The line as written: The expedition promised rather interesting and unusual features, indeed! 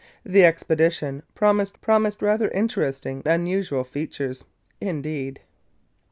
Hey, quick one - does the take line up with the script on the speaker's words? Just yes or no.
no